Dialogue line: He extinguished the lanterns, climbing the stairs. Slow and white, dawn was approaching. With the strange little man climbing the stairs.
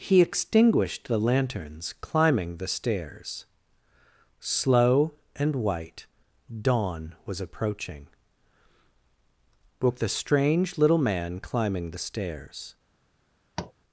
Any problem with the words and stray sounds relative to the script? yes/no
yes